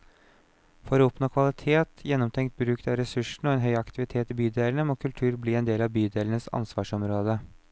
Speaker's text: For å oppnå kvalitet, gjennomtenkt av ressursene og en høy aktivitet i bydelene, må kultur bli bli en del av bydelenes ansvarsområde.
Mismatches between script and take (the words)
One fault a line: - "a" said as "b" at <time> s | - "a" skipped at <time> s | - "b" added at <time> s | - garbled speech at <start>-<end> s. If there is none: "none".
- "bruk" added at 2.6 s
- "bli" skipped at 5.6 s